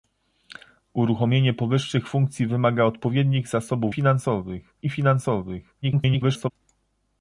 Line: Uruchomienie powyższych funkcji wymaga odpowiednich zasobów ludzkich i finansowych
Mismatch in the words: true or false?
true